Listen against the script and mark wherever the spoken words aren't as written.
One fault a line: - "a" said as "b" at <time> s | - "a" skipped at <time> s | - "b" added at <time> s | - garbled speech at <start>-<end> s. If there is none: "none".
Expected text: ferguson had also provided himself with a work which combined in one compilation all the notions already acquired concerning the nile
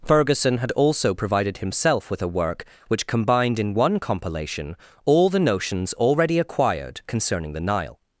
none